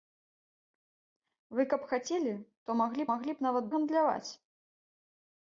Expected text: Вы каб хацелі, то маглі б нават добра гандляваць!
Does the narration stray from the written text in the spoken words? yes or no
yes